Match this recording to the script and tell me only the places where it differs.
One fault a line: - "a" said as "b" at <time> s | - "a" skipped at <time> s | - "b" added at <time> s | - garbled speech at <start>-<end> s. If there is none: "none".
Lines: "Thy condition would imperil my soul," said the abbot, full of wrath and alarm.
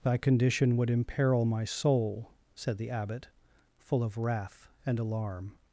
none